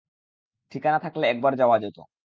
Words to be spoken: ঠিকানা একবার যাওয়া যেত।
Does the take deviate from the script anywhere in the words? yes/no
yes